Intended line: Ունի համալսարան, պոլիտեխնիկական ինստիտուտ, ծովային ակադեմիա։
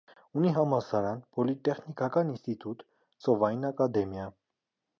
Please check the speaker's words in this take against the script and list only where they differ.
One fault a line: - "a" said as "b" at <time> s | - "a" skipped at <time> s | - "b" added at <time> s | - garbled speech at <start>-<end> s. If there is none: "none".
none